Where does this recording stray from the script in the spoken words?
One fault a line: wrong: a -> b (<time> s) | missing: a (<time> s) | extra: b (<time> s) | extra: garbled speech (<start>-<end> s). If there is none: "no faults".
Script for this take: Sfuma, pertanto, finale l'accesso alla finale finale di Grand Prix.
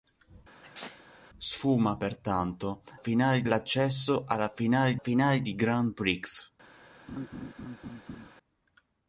no faults